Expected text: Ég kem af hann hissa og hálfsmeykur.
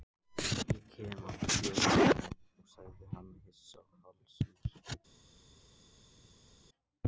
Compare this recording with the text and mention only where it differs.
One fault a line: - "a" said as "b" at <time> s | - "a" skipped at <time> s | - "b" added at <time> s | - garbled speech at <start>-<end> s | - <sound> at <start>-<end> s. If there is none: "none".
- "fjöllum sagði" added at 1.6 s